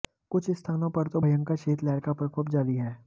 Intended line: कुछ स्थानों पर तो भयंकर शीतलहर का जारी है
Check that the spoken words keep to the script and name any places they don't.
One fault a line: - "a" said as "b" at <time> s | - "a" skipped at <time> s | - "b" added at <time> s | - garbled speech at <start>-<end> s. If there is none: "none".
- "प्रकोप" added at 2.1 s